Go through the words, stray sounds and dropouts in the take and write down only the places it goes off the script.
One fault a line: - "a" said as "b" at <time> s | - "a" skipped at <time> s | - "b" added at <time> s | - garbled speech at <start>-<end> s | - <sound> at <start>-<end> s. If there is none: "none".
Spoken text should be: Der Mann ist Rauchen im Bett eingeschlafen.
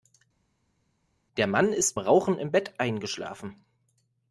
none